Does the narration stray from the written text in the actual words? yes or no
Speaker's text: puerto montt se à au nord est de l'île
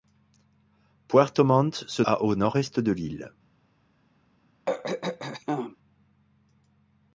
no